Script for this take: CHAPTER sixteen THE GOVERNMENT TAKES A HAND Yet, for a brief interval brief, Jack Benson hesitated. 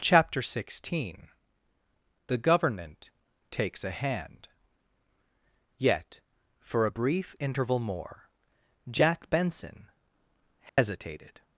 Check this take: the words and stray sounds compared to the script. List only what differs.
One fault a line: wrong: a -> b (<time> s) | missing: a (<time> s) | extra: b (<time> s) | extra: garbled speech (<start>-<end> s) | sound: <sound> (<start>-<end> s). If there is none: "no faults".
wrong: brief -> more (7.8 s)
sound: dropout (10.7-10.8 s)